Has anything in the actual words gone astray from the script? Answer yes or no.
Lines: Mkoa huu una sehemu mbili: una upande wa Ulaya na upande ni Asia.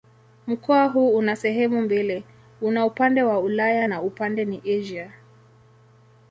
no